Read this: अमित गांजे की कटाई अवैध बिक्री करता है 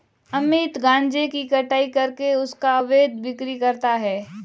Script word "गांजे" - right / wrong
right